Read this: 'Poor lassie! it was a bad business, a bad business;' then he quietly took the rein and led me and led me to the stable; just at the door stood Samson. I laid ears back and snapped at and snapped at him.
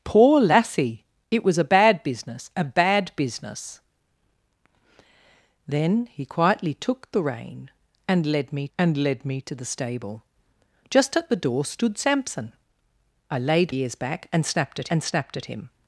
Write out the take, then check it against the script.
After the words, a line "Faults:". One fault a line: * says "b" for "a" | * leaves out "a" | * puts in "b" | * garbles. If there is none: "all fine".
'Poor lassie! it was a bad business, a bad business;' then he quietly took the rein and led me and led me to the stable; just at the door stood Samson. I laid ears back and snapped at and snapped at him.
Faults:
all fine